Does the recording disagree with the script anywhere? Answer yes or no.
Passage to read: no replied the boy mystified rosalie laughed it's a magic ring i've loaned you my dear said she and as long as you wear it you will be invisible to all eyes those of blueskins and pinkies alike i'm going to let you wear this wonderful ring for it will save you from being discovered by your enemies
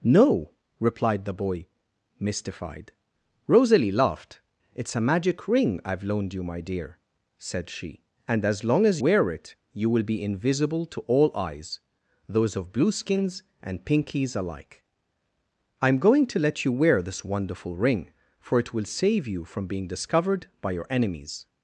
yes